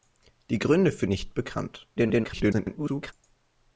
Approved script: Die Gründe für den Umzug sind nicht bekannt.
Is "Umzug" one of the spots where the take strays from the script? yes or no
yes